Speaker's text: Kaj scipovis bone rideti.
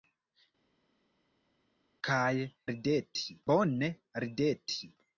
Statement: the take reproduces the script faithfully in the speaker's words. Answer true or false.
false